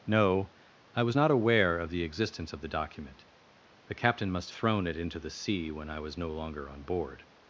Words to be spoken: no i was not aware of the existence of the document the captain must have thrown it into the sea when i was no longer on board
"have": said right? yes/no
no